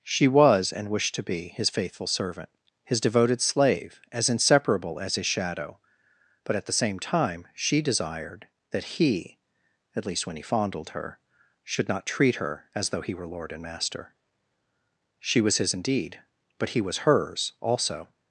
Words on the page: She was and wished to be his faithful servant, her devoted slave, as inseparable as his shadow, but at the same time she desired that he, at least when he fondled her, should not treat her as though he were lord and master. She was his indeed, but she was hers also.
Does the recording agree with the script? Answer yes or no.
no